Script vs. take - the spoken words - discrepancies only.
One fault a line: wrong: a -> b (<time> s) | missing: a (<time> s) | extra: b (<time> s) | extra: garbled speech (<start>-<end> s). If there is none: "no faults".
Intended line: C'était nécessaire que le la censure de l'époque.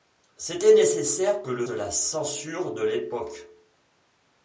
no faults